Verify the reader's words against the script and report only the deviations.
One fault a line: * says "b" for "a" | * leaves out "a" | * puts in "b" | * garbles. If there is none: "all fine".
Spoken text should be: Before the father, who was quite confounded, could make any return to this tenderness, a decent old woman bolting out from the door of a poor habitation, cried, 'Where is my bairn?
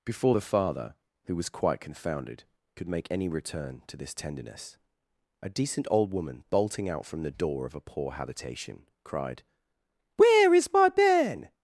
all fine